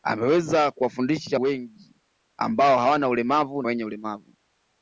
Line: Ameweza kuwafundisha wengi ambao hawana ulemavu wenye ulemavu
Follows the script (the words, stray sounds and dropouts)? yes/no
yes